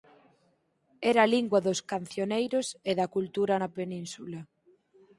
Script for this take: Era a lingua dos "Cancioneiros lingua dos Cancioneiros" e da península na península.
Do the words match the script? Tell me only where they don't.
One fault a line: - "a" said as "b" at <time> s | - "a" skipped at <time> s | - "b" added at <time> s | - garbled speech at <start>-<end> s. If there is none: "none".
- "lingua dos Cancioneiros" skipped at 2.7 s
- "península" said as "cultura" at 3.1 s